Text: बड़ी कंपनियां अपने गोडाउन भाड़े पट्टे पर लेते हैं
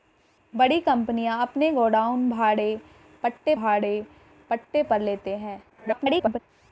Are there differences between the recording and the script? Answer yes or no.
yes